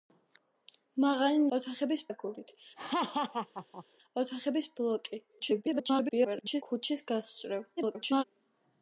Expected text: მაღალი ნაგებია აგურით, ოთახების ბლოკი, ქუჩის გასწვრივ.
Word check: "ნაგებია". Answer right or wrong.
wrong